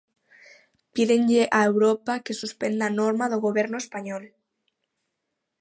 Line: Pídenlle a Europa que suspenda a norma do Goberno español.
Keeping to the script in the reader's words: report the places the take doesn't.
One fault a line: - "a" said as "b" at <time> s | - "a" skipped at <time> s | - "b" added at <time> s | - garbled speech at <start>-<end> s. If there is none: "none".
none